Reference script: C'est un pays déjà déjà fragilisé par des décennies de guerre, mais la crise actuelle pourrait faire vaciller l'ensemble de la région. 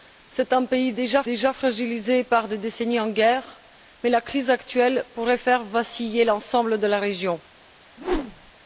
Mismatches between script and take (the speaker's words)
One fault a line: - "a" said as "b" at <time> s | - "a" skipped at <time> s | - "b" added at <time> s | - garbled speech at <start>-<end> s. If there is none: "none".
none